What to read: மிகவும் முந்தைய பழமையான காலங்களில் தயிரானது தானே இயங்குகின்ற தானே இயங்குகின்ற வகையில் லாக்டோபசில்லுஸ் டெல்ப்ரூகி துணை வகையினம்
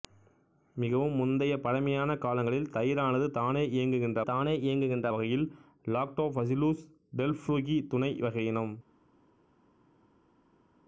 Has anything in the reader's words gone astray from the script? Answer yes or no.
no